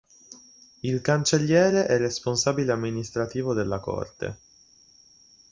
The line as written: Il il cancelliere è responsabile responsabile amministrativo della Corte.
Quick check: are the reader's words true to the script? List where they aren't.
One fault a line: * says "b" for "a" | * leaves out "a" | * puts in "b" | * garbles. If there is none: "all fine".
* leaves out "il"
* leaves out "responsabile"